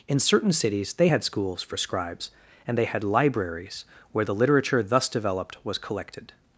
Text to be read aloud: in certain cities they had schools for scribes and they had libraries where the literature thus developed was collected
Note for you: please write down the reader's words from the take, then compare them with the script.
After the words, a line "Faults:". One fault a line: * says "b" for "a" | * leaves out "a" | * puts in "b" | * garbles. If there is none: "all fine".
in certain cities they had schools for scribes and they had libraries where the literature thus developed was collected
Faults:
all fine